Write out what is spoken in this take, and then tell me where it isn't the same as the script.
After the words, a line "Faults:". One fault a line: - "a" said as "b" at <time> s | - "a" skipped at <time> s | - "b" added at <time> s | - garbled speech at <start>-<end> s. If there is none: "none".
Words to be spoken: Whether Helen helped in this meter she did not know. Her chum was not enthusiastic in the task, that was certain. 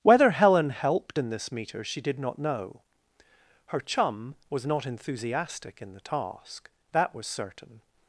Whether Helen helped in this meter she did not know. Her chum was not enthusiastic in the task, that was certain.
Faults:
none